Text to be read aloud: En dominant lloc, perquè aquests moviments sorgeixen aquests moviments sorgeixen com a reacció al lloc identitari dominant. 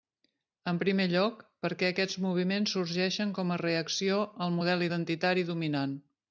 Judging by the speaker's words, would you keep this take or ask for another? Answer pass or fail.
fail